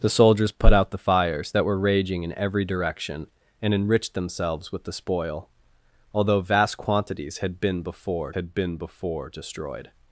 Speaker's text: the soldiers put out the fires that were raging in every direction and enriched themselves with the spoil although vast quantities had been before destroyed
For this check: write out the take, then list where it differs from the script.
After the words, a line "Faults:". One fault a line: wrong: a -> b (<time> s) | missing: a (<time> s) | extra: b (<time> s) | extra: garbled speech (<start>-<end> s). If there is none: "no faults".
the soldiers put out the fires that were raging in every direction and enriched themselves with the spoil although vast quantities had been before had been before destroyed
Faults:
extra: had been before (8.3 s)